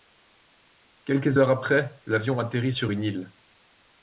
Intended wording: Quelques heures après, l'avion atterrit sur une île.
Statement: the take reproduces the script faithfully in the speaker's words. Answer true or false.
true